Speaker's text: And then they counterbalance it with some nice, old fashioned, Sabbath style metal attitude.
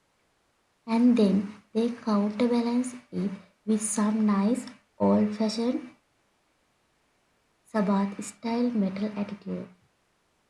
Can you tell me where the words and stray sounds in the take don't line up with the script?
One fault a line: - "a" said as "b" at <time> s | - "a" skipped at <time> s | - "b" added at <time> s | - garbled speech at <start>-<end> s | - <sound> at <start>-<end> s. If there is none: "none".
none